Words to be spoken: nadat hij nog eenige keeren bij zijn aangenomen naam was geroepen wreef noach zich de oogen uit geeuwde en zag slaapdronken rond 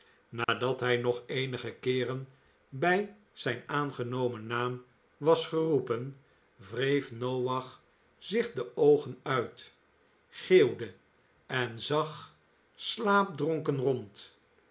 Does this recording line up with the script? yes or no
yes